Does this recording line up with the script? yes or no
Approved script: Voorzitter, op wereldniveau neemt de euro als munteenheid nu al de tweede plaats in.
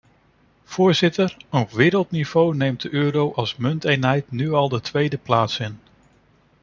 yes